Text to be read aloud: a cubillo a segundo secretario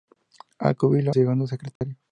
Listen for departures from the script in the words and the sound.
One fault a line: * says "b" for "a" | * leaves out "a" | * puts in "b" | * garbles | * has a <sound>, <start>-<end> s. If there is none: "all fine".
* leaves out "a"
* has a dropout, 1.8-1.8 s